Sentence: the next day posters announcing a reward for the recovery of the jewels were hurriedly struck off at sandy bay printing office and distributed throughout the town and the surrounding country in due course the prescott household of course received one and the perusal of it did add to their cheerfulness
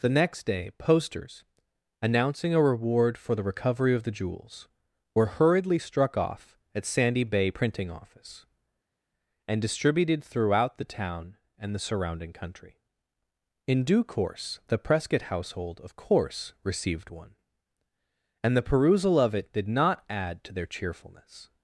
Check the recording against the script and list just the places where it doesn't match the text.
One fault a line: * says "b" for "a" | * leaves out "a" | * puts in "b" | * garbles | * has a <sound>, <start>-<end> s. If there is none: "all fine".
* puts in "not"